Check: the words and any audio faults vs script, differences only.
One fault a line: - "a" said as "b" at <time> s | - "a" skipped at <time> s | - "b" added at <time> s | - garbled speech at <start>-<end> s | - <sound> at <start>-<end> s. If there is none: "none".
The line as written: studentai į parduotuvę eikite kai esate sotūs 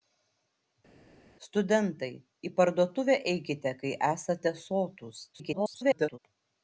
- garbled speech at 5.3-6.2 s